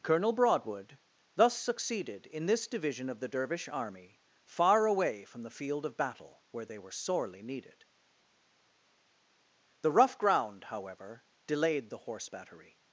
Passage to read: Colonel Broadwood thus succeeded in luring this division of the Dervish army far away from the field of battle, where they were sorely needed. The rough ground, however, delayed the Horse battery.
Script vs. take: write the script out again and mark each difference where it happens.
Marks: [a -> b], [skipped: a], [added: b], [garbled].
Colonel Broadwood thus succeeded in [skipped: luring] this division of the Dervish army far away from the field of battle, where they were sorely needed. The rough ground, however, delayed the Horse battery.